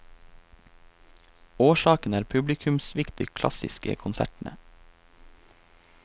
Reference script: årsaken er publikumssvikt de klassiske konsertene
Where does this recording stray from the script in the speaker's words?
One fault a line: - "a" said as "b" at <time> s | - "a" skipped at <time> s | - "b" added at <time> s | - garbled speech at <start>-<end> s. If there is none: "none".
none